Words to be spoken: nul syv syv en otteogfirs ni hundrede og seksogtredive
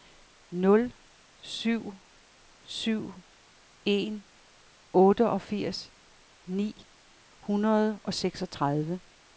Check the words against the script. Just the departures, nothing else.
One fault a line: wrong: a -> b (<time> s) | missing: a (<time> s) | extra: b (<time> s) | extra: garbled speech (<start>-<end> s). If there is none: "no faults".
no faults